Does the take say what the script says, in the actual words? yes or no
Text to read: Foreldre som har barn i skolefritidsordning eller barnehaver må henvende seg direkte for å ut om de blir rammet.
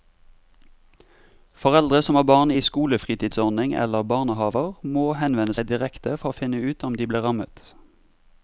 no